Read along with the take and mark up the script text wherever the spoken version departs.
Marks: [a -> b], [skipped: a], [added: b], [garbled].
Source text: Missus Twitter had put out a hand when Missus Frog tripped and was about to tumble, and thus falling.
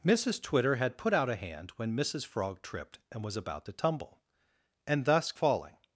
Missus Twitter had put out a hand when Missus Frog tripped and was about to tumble, and thus falling.